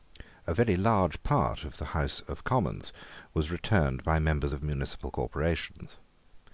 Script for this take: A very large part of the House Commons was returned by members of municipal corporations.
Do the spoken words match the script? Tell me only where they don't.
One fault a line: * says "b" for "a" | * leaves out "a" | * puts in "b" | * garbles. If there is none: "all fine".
* puts in "of"